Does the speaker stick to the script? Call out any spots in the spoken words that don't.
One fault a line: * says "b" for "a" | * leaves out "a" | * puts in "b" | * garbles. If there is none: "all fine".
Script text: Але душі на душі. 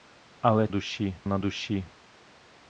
all fine